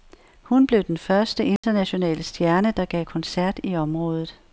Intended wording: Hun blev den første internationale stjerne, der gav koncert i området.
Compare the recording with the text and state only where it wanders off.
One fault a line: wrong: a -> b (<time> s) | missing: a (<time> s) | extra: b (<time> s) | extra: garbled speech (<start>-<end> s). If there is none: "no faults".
no faults